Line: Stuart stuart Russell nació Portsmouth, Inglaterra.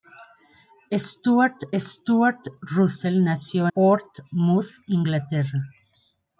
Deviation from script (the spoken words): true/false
false